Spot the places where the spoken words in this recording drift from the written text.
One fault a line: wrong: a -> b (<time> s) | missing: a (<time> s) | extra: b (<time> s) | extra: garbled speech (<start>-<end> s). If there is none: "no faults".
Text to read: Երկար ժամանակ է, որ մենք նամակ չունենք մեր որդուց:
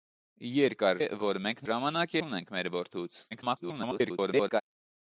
missing: ժամանակ (1.0 s)
wrong: նամակ -> ժամանակ (1.7 s)
extra: garbled speech (3.3-4.6 s)